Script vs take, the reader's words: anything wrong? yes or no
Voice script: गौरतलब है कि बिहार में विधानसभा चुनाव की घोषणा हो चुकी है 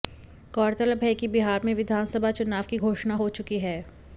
no